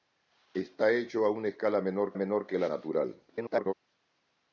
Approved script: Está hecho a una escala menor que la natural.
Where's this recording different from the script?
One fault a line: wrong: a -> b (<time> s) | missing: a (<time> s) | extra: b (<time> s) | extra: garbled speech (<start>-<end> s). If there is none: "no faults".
extra: menor (2.1 s)
extra: garbled speech (3.3-3.7 s)